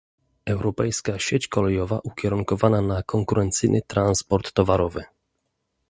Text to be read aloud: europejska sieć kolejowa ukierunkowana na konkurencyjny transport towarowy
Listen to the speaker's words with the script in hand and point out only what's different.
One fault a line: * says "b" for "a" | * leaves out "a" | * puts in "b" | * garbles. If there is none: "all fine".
all fine